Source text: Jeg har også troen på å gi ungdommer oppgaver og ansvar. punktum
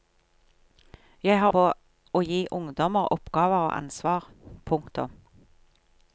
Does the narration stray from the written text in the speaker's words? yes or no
yes